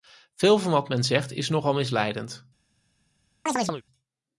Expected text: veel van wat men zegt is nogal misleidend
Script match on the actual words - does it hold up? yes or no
yes